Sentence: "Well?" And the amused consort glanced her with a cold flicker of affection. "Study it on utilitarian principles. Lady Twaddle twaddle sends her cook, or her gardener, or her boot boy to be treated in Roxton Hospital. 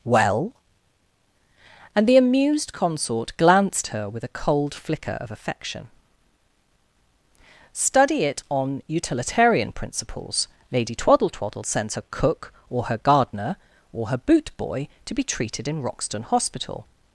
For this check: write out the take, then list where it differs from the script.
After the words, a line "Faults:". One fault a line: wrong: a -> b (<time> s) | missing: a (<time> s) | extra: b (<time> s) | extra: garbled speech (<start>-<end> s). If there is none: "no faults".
"Well?" And the amused consort glanced her with a cold flicker of affection. "Study it on utilitarian principles. Lady Twaddle twaddle sends her cook, or her gardener, or her boot boy to be treated in Roxton Hospital.
Faults:
no faults